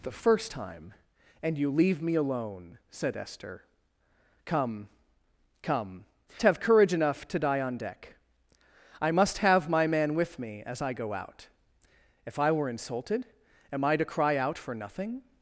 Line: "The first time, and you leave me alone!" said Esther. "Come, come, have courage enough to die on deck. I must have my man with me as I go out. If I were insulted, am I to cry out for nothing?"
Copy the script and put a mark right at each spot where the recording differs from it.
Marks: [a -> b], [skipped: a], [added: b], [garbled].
"The first time, and you leave me alone!" said Esther. "Come, come, have courage enough to die on deck. I must have my man with me as I go out. If I were insulted, am I to cry out for nothing?"